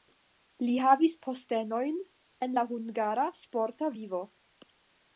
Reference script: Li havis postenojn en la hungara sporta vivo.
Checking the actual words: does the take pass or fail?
pass